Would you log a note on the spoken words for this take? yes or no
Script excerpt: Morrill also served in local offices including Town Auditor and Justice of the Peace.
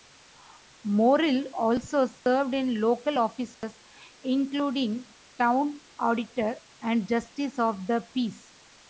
no